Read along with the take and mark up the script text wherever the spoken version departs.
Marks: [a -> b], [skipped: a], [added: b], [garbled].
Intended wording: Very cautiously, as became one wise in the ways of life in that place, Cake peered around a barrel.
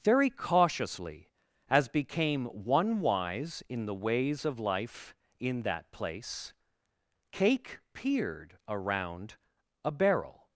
Very cautiously, as became one wise in the ways of life in that place, Cake peered around a barrel.